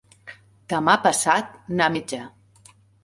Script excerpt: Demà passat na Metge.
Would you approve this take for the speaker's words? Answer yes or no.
yes